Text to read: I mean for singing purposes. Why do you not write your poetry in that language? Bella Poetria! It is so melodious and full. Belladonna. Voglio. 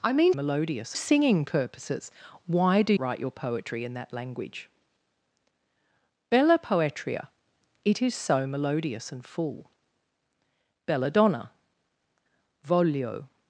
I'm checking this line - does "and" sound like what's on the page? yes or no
yes